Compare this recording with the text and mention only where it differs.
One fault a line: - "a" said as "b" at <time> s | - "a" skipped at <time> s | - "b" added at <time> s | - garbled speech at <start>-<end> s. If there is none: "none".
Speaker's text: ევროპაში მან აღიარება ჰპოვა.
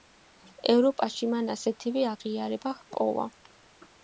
- "ასეთივე" added at 1.6 s